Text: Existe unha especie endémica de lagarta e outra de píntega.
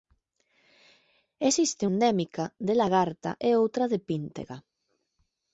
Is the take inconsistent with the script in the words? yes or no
yes